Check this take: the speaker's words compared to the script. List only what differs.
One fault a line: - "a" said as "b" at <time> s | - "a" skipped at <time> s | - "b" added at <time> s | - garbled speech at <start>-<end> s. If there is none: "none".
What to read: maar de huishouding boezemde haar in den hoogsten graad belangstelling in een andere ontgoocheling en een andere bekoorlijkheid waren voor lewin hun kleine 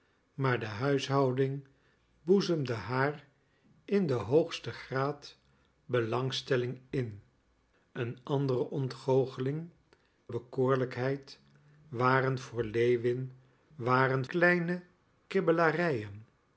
- "en een andere" skipped at 9.7 s
- "hun" said as "waren" at 13.7 s